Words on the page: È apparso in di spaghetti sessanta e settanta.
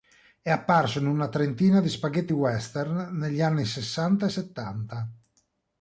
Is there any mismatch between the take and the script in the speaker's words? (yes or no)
yes